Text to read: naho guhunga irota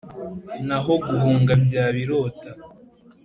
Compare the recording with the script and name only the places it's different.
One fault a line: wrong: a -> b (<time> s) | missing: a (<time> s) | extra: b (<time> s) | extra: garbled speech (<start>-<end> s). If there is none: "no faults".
extra: byaba (1.6 s)